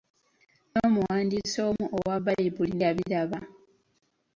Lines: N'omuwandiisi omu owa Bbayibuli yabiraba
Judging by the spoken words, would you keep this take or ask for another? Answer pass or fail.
pass